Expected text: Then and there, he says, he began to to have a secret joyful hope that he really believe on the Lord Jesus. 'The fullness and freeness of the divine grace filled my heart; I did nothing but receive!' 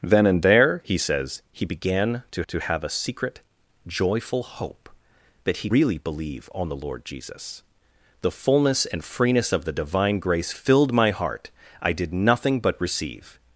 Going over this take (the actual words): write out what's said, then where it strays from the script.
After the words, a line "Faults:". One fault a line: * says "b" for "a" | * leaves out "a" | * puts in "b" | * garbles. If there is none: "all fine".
Then and there, he says, he began to to have a secret joyful hope that he really believe on the Lord Jesus. 'The fullness and freeness of the divine grace filled my heart; I did nothing but receive!'
Faults:
all fine